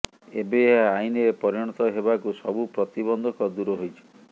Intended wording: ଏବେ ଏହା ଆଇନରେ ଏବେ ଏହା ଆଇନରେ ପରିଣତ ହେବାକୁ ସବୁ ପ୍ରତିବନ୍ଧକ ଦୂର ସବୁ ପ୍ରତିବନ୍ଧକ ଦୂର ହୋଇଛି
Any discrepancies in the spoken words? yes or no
yes